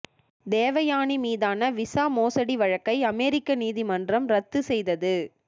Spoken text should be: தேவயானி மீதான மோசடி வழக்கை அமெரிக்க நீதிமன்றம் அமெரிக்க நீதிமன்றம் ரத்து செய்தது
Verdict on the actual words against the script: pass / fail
fail